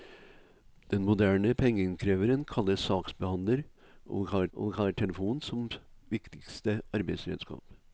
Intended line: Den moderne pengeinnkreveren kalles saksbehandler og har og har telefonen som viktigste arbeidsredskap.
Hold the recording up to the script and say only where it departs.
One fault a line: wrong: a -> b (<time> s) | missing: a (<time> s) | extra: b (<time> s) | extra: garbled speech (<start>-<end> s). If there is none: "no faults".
no faults